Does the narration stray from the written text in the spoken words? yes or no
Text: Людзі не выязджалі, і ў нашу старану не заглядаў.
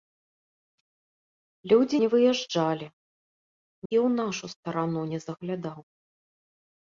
no